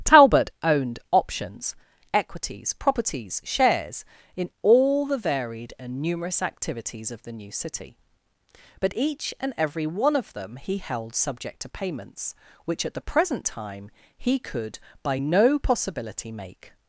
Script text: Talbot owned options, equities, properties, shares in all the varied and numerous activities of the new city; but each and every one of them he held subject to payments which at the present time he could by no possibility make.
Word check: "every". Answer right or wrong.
right